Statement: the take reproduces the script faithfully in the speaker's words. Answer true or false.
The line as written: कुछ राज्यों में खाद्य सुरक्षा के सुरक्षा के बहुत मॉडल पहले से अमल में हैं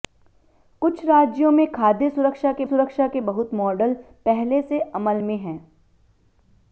true